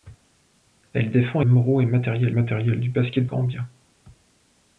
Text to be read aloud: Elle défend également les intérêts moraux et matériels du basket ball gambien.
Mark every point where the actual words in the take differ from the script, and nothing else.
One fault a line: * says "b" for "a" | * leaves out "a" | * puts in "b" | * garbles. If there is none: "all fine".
* leaves out "également les intérêts"
* puts in "matériels"
* leaves out "ball"